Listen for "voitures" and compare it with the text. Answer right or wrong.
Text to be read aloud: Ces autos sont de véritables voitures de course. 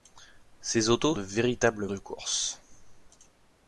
wrong